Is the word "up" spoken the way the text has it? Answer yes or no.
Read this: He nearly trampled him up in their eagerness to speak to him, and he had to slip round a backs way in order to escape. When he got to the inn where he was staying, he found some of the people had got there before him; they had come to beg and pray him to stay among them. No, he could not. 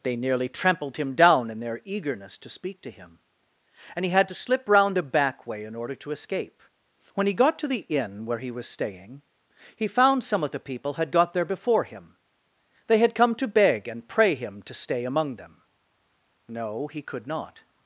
no